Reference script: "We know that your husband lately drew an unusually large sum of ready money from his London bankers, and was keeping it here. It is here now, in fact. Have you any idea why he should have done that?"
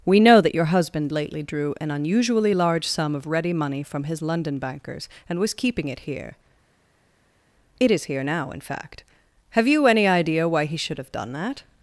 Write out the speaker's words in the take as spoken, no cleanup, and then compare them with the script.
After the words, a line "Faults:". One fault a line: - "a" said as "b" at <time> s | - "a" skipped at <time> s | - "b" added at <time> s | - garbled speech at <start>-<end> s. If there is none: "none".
"We know that your husband lately drew an unusually large sum of ready money from his London bankers, and was keeping it here. It is here now, in fact. Have you any idea why he should have done that?"
Faults:
none